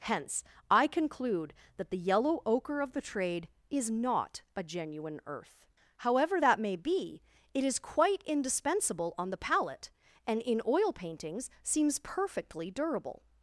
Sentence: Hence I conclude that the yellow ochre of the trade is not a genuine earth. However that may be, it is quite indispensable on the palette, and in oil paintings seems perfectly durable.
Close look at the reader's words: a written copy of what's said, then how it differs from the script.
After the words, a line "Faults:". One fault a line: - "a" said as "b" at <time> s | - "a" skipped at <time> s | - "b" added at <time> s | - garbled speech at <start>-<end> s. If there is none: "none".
Hence I conclude that the yellow ochre of the trade is not a genuine earth. However that may be, it is quite indispensable on the palette, and in oil paintings seems perfectly durable.
Faults:
none